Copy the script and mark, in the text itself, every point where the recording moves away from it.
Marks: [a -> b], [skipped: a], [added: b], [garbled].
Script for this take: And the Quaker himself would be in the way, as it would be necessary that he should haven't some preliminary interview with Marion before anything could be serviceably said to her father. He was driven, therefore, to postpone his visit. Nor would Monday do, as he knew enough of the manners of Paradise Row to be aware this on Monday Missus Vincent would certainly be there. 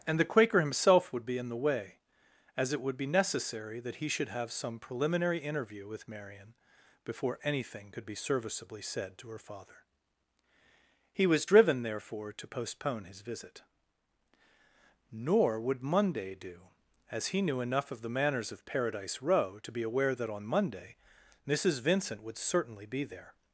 And the Quaker himself would be in the way, as it would be necessary that he should [haven't -> have] some preliminary interview with Marion before anything could be serviceably said to her father. He was driven, therefore, to postpone his visit. Nor would Monday do, as he knew enough of the manners of Paradise Row to be aware [this -> that] on Monday Missus Vincent would certainly be there.